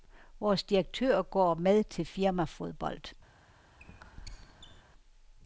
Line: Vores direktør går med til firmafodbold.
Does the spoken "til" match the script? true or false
true